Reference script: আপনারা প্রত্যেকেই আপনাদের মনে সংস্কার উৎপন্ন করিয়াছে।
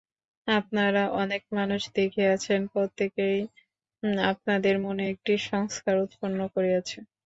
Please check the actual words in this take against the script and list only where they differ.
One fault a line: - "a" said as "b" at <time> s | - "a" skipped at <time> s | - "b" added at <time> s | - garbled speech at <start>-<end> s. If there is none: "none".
- "অনেক মানুষ দেখিয়াছেন" added at 1.1 s
- "একটি" added at 5.1 s